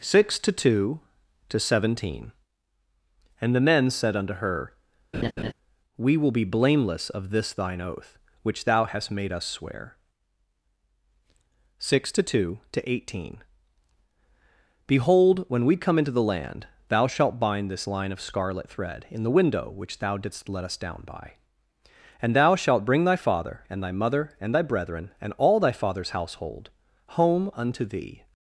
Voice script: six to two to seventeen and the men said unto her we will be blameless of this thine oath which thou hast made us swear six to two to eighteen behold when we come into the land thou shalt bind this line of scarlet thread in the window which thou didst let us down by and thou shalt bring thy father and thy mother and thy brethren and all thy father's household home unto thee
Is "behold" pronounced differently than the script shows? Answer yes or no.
no